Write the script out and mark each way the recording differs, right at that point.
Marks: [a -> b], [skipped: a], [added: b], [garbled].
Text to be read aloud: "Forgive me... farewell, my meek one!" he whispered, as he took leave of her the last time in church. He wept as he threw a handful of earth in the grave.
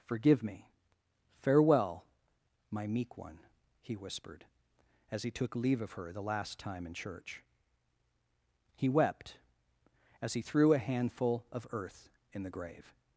"Forgive me... farewell, my meek one!" he whispered, as he took leave of her the last time in church. He wept as he threw a handful of earth in the grave.